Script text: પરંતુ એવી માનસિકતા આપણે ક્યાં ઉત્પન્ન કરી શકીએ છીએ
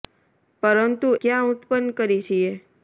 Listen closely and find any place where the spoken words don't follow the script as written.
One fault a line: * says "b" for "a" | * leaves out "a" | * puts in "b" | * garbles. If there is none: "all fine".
* leaves out "એવી માનસિકતા આપણે"
* leaves out "શકીએ"